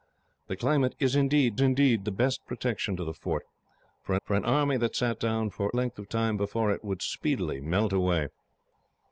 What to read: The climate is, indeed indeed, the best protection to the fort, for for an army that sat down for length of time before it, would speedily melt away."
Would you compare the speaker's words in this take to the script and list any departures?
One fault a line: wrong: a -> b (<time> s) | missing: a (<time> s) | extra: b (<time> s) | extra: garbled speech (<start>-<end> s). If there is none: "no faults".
no faults